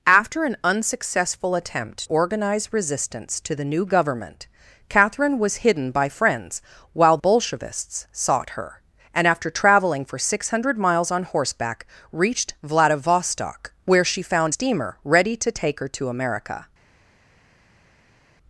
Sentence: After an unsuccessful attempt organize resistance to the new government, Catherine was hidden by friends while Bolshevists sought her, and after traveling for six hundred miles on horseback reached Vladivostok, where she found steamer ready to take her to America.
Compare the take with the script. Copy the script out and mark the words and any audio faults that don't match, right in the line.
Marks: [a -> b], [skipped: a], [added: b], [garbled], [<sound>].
After an unsuccessful attempt organize resistance to the new government, Catherine was hidden by friends while Bolshevists sought her, and after traveling for six hundred miles on horseback reached Vladivostok, where she found steamer ready to take her to America.